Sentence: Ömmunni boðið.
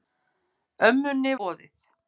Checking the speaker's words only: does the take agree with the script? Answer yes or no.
yes